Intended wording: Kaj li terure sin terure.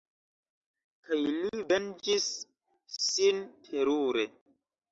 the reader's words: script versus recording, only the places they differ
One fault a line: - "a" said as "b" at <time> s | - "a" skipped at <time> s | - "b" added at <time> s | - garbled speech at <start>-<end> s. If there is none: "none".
- "terure" said as "venĝis" at 1.7 s